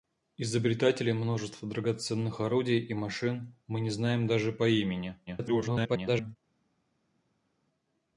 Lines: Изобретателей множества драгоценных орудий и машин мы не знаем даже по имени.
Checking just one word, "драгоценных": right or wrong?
right